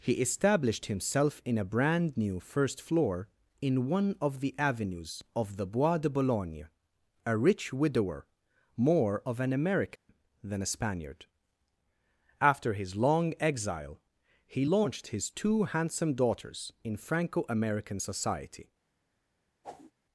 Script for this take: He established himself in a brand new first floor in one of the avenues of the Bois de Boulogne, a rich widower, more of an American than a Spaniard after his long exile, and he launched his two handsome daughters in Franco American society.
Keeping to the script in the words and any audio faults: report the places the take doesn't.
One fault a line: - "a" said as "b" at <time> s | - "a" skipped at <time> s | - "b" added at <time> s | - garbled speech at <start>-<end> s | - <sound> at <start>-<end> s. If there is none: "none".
- dropout at 10.0-10.1 s
- "and" skipped at 14.0 s
- whoosh at 19.6-19.9 s